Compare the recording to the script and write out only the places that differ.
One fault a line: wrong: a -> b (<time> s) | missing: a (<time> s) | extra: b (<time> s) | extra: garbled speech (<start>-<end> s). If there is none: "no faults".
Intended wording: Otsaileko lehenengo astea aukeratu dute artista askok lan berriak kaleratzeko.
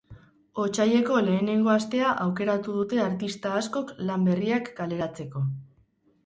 no faults